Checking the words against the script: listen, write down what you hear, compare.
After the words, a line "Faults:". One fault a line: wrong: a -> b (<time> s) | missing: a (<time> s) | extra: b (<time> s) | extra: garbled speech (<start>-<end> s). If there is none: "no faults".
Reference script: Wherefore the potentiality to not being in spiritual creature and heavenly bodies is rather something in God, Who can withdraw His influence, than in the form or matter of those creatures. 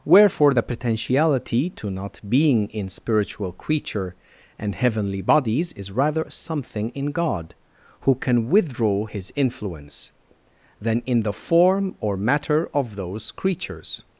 Wherefore the potentiality to not being in spiritual creature and heavenly bodies is rather something in God, Who can withdraw His influence, than in the form or matter of those creatures.
Faults:
no faults